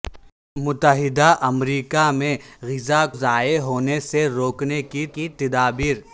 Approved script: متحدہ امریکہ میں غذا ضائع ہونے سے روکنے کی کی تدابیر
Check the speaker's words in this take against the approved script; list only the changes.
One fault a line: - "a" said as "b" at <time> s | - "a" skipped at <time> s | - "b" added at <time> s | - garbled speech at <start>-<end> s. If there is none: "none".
none